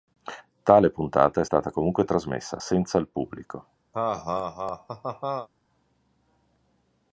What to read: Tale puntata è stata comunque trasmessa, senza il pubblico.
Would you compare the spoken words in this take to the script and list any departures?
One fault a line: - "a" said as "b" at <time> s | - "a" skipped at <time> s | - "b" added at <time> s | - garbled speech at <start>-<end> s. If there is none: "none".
none